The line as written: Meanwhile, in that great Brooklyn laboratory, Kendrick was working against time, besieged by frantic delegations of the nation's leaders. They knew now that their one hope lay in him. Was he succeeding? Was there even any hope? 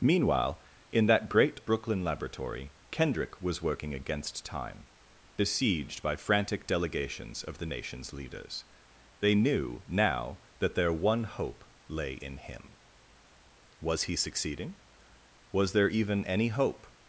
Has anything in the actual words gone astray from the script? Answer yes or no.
no